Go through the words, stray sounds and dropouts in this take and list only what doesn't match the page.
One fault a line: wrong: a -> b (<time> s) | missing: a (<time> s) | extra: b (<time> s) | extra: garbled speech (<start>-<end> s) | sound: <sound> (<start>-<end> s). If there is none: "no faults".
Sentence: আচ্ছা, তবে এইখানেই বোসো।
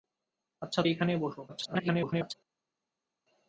missing: তবে (0.8 s)
extra: garbled speech (1.5-2.3 s)